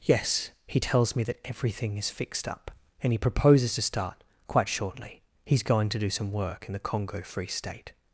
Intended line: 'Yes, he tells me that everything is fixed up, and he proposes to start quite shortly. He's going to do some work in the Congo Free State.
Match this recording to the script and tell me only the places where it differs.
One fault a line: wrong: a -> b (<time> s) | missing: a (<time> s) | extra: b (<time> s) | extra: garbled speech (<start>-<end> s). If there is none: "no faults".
no faults